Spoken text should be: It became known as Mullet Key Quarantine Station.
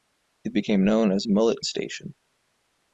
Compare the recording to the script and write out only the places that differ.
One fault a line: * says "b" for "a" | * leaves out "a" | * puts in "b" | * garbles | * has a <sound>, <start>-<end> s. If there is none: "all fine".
* leaves out "Key Quarantine"